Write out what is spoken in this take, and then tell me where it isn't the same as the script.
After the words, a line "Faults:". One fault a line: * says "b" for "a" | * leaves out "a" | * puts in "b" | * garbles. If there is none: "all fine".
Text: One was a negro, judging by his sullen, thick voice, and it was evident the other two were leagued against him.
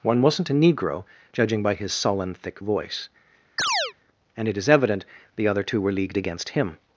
One wasn't a negro, judging by his sullen, thick voice, and it is evident the other two were leagued against him.
Faults:
* says "wasn't" for "was"
* says "is" for "was"